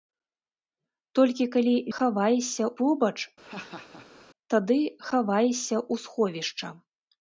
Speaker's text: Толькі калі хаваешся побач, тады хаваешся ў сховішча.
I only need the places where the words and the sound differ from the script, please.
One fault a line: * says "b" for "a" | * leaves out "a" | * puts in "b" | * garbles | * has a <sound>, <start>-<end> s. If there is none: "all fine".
* has a laugh, 3.4-4.3 s